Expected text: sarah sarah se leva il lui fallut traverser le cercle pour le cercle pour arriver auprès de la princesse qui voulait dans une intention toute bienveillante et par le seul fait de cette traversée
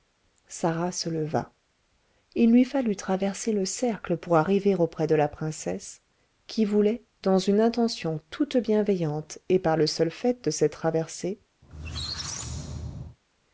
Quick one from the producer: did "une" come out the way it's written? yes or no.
yes